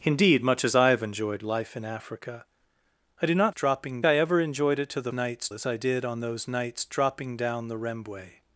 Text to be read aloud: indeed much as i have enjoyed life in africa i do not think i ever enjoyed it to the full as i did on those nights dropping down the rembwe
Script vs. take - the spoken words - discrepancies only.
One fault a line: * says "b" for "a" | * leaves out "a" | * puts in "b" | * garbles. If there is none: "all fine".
* says "dropping" for "think"
* says "nights" for "full"